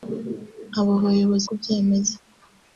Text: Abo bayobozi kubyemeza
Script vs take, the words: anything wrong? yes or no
no